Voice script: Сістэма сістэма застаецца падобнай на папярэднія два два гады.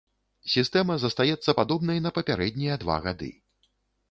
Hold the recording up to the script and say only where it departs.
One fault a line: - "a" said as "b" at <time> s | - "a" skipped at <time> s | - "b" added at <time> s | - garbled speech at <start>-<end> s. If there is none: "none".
- "сістэма" skipped at 0.9 s
- "два" skipped at 3.0 s